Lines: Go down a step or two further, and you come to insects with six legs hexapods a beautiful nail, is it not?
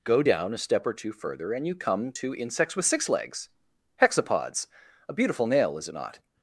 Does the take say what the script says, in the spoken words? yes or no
yes